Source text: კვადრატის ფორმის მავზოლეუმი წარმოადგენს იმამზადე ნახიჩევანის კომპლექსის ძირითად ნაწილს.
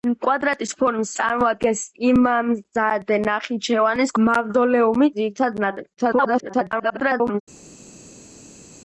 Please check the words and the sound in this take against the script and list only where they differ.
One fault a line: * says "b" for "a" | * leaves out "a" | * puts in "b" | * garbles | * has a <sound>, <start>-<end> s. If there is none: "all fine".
* leaves out "მავზოლეუმი"
* says "მავზოლეუმი" for "კომპლექსის"
* garbles